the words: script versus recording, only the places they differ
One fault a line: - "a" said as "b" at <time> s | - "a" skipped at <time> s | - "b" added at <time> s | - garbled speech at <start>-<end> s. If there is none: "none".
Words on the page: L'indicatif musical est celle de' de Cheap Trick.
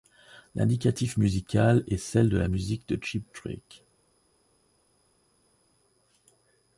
- "la musique" added at 2.4 s